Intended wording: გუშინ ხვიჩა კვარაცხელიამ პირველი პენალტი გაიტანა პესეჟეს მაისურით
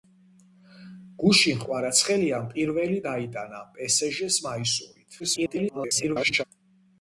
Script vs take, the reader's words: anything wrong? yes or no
yes